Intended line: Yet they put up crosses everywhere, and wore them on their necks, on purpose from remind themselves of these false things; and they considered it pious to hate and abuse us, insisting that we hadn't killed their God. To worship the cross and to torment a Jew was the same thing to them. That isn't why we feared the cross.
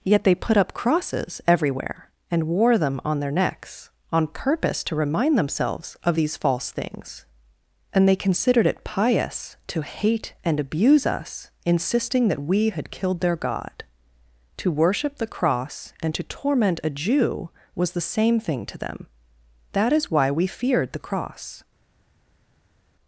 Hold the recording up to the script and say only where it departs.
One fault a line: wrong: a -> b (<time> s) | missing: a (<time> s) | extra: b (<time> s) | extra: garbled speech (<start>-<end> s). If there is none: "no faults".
wrong: from -> to (4.8 s)
wrong: hadn't -> had (12.7 s)
wrong: isn't -> is (19.9 s)